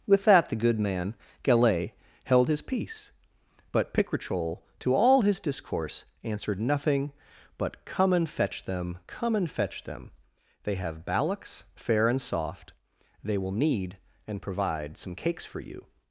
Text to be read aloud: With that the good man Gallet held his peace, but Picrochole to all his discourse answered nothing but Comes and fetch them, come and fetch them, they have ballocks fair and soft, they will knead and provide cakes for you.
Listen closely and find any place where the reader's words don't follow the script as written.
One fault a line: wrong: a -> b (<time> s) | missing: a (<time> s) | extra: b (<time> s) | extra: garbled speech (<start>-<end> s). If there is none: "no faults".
wrong: Comes -> Come (7.8 s)
extra: some (15.0 s)